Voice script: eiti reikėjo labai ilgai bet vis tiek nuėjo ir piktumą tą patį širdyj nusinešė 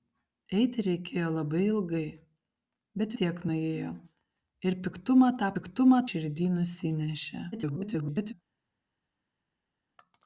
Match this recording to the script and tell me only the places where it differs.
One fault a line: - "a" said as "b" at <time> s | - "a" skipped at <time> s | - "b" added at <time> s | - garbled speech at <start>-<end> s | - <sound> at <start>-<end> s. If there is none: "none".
- "vis" skipped at 3.2 s
- "patį" said as "piktumą" at 5.6 s
- garbled speech at 7.5-8.3 s